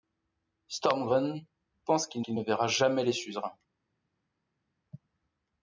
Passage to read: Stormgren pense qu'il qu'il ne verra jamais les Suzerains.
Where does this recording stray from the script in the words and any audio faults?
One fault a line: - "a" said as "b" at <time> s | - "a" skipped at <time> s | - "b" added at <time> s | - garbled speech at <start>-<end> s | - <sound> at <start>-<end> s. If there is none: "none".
none